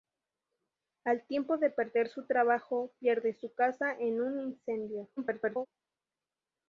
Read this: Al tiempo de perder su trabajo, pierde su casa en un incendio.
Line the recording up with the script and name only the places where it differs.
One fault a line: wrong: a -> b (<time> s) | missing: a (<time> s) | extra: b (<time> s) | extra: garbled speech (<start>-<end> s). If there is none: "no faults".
extra: garbled speech (5.2-5.7 s)